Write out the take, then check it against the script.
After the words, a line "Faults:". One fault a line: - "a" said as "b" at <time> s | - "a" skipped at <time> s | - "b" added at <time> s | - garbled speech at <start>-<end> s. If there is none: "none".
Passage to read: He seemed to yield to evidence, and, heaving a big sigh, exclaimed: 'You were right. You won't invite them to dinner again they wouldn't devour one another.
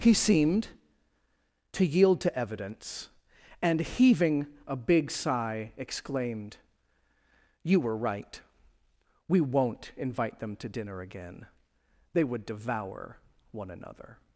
He seemed to yield to evidence, and, heaving a big sigh, exclaimed: 'You were right. We won't invite them to dinner again they would devour one another.
Faults:
- "You" said as "We" at 9.3 s
- "wouldn't" said as "would" at 12.2 s